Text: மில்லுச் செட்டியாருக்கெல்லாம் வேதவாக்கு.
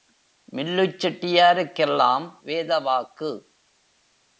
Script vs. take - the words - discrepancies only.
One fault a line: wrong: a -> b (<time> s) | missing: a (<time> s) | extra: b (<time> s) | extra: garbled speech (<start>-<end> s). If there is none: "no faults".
no faults